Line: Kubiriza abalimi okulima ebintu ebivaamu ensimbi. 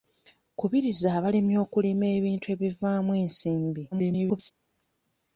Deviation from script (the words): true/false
true